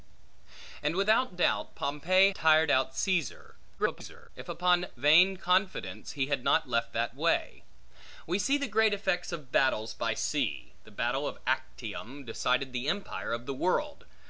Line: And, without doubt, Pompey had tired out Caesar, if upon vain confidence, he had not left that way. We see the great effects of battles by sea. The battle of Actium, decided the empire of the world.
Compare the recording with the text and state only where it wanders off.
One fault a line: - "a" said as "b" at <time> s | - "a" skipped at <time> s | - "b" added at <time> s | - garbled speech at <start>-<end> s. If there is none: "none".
- "had" skipped at 2.3 s
- garbled speech at 3.8-4.3 s